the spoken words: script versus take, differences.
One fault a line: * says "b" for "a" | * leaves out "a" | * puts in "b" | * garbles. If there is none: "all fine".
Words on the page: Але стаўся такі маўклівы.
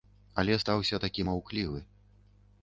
all fine